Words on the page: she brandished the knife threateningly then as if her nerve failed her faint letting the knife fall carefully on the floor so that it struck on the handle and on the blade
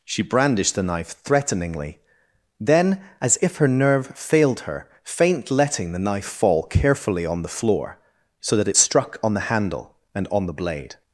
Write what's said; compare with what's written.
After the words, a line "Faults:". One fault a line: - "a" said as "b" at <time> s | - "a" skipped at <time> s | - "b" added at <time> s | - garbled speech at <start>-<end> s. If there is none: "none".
she brandished the knife threateningly then as if her nerve failed her faint letting the knife fall carefully on the floor so that it struck on the handle and on the blade
Faults:
none